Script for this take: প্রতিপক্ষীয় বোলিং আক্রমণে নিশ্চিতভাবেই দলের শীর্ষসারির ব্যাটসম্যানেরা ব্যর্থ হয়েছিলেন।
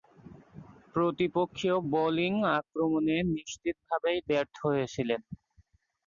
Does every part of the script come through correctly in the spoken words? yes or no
no